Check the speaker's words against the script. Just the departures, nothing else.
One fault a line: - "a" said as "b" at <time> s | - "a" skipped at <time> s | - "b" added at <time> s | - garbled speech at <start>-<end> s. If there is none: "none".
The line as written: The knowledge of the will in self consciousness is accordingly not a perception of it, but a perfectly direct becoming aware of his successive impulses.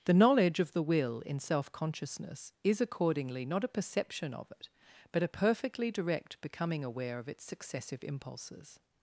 - "his" said as "its" at 7.3 s